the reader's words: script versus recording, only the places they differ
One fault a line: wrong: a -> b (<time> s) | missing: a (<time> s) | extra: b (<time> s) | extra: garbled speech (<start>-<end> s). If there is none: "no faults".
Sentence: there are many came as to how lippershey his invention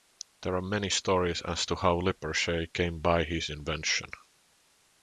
wrong: came -> stories (0.9 s)
extra: came by (2.7 s)